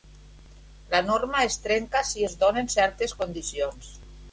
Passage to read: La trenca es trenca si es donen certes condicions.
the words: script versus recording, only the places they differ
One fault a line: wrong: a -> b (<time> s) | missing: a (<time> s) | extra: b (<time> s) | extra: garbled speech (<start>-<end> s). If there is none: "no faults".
wrong: trenca -> norma (1.1 s)